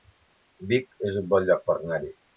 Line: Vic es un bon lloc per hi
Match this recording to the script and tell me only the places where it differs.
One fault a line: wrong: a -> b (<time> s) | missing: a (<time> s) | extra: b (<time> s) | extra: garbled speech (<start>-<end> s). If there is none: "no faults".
extra: anar (1.8 s)